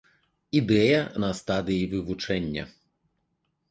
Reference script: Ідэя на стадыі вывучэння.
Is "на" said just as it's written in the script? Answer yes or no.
yes